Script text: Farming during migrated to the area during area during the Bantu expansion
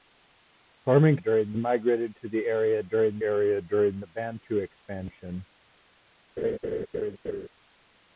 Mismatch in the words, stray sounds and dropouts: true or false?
true